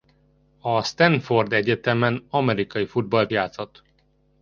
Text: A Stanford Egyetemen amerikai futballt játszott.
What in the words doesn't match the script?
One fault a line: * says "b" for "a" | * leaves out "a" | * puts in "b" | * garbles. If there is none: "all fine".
all fine